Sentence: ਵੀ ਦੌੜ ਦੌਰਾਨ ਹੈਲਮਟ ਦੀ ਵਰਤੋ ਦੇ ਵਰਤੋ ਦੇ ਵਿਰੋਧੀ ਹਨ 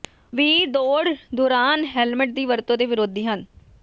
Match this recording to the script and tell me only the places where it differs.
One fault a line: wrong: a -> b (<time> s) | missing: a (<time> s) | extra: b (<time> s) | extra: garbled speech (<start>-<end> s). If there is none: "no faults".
missing: ਵਰਤੋ ਦੇ (2.9 s)